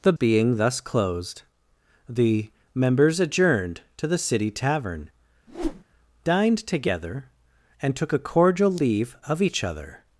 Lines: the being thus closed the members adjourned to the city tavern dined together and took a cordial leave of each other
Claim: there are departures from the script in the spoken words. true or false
false